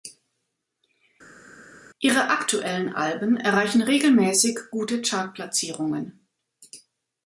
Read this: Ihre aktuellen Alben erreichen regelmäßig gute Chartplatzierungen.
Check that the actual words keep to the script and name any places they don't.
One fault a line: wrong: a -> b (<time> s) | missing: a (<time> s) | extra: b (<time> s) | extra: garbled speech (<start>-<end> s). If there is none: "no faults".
no faults